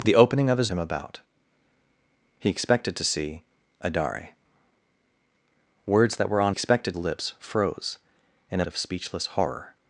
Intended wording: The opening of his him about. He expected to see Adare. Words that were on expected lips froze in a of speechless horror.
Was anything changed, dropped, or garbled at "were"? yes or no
no